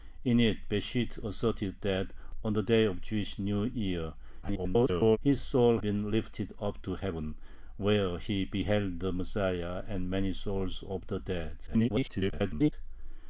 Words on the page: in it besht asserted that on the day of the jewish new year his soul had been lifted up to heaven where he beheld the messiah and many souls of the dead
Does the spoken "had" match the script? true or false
false